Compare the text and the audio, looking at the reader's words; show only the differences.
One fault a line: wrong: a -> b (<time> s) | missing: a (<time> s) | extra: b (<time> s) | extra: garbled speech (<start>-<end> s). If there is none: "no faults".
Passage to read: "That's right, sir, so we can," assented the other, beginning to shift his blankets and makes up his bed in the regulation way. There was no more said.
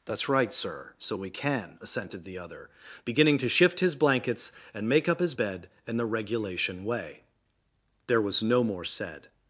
wrong: makes -> make (4.9 s)